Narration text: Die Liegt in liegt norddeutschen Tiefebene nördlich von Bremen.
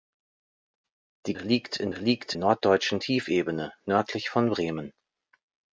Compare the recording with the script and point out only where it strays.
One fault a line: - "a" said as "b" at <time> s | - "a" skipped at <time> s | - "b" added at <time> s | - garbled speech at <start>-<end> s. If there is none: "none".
none